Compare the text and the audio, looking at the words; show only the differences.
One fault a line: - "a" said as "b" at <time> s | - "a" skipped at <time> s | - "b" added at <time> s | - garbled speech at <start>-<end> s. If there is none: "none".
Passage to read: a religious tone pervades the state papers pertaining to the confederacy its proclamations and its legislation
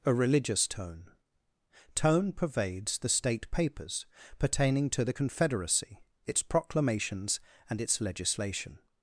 - "tone" added at 1.9 s